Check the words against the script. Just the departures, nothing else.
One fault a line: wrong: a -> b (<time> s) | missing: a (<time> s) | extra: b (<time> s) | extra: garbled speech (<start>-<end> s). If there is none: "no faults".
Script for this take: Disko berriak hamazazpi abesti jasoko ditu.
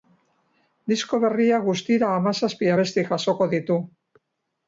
extra: guztira (1.7 s)